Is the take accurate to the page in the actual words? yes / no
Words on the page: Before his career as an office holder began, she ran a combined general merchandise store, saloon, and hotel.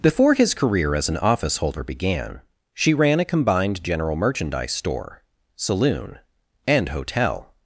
yes